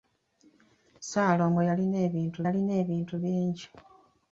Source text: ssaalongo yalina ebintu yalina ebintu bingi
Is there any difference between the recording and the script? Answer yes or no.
no